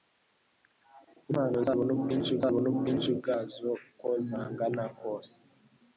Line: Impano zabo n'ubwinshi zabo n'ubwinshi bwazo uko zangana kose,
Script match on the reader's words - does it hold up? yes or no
yes